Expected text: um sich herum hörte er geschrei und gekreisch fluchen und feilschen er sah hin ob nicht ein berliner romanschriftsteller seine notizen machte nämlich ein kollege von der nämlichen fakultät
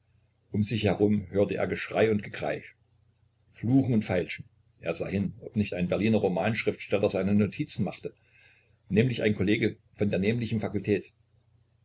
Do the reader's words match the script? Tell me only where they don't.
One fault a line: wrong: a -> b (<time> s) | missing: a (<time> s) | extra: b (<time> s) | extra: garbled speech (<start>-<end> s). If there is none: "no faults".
no faults